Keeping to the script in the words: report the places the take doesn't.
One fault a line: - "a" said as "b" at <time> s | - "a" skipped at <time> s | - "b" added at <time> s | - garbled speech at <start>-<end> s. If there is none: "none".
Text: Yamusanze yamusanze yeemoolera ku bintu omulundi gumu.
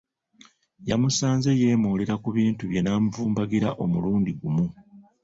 - "yamusanze" skipped at 1.5 s
- "bye n'amuvumbagira" added at 2.7 s